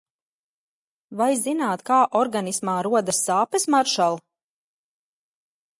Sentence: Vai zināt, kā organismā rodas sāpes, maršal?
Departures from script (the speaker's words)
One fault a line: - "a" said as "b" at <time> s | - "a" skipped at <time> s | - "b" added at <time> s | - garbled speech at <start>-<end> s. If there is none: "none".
none